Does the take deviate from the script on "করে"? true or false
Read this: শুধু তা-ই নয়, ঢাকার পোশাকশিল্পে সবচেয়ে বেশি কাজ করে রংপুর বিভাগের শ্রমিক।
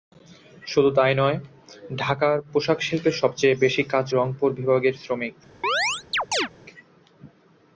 true